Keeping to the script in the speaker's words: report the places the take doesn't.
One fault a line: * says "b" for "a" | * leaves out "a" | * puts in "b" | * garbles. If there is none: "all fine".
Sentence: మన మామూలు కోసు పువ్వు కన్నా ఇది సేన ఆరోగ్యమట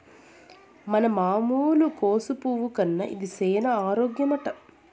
all fine